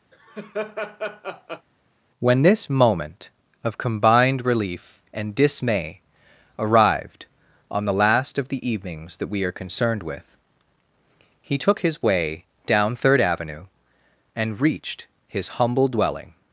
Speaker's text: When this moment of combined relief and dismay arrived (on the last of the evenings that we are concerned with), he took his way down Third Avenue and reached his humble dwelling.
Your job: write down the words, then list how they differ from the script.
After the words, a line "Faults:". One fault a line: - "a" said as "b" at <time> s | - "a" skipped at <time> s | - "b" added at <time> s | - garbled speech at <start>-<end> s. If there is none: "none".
When this moment of combined relief and dismay arrived (on the last of the evenings that we are concerned with), he took his way down Third Avenue and reached his humble dwelling.
Faults:
none